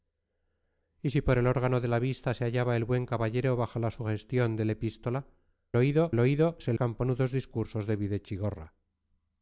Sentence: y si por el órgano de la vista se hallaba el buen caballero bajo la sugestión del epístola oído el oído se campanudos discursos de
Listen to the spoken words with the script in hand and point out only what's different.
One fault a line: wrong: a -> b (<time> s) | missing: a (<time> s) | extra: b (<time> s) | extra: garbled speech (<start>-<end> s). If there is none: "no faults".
no faults